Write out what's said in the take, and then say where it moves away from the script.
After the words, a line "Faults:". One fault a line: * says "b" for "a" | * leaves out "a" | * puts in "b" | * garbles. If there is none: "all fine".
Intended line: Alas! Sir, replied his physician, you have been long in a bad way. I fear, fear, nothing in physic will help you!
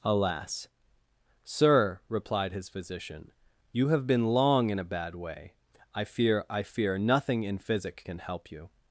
Alas! Sir, replied his physician, you have been long in a bad way. I fear, I fear, nothing in physic can help you!
Faults:
* puts in "I"
* says "can" for "will"